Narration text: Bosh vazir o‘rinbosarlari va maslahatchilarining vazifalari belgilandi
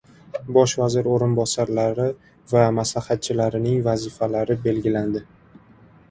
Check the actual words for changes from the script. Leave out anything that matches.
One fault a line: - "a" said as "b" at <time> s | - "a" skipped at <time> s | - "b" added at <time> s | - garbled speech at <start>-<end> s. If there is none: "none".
none